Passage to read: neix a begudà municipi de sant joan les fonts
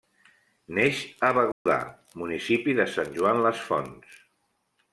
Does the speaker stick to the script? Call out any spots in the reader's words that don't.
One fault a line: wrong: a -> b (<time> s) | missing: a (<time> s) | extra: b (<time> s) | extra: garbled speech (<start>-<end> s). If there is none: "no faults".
no faults